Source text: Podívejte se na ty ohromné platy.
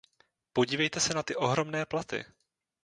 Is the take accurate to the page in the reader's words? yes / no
yes